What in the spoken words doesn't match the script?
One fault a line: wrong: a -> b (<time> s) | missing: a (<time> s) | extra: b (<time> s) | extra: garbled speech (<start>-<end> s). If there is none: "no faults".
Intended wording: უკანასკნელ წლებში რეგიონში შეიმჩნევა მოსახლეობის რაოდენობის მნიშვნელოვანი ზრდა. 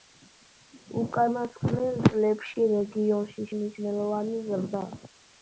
missing: შეიმჩნევა მოსახლეობის რაოდენობის (3.5 s)